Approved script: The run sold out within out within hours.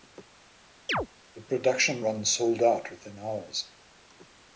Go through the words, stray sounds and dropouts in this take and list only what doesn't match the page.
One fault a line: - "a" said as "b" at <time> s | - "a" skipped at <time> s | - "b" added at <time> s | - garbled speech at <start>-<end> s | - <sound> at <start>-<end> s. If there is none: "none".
- chirp at 0.9-1.1 s
- "production" added at 1.4 s
- "out within" skipped at 3.2 s